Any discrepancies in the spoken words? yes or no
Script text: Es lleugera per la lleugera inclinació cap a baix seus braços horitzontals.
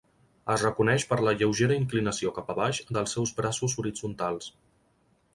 yes